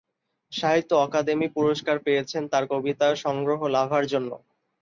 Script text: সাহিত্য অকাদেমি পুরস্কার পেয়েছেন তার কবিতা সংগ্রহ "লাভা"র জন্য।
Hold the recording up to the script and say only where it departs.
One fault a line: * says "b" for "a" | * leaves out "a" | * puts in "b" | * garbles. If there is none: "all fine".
all fine